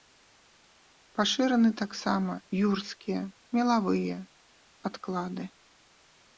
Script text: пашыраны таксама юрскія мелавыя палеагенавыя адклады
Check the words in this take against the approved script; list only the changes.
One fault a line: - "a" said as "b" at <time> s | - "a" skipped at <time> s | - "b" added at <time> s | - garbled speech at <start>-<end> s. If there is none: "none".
- "палеагенавыя" skipped at 4.2 s